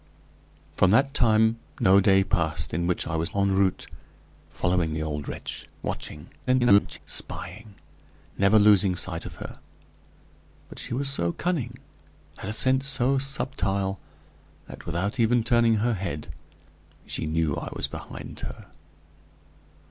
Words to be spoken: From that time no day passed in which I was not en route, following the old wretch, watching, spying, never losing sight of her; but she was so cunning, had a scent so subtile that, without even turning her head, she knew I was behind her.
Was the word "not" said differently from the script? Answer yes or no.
yes